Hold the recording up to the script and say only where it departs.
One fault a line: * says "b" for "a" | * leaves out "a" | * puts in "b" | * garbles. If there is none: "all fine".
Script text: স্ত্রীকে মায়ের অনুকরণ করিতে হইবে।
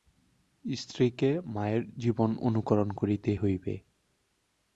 * puts in "জীবন"